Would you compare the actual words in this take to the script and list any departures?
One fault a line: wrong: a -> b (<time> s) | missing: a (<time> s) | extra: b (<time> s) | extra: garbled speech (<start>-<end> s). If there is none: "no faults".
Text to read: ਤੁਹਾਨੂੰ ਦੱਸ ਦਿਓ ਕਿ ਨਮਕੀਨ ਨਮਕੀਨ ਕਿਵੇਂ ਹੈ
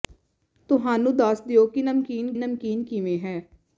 no faults